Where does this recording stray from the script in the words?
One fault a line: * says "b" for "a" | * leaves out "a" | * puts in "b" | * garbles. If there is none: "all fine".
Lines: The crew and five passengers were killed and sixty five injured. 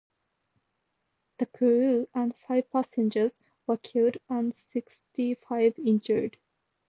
all fine